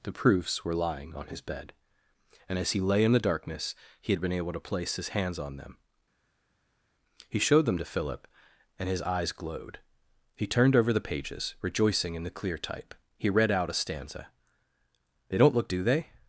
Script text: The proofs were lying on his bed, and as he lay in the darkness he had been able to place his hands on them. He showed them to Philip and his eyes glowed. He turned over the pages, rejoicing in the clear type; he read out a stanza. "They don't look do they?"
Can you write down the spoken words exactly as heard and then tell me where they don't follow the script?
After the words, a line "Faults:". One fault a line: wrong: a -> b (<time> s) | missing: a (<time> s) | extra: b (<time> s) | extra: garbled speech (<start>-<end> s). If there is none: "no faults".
The proofs were lying on his bed, and as he lay in the darkness he had been able to place his hands on them. He showed them to Philip and his eyes glowed. He turned over the pages, rejoicing in the clear type; he read out a stanza. "They don't look do they?"
Faults:
no faults